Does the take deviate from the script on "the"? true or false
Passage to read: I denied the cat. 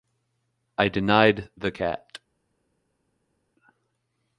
false